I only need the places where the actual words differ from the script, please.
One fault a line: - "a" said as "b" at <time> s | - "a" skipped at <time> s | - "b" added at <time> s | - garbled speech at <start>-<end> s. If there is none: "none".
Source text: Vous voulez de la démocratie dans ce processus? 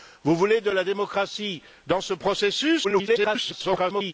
- garbled speech at 2.8-4.1 s